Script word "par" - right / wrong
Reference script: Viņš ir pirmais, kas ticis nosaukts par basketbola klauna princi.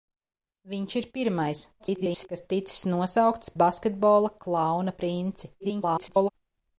wrong